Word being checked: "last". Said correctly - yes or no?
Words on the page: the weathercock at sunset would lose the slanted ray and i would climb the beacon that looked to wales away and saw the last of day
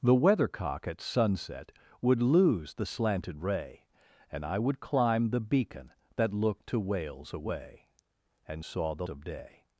no